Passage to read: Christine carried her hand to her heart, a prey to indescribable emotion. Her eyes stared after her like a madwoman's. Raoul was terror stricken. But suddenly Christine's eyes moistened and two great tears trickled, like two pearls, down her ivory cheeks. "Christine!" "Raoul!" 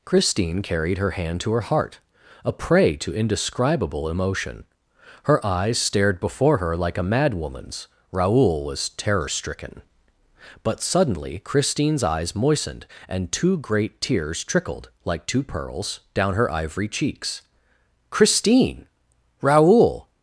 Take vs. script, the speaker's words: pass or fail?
fail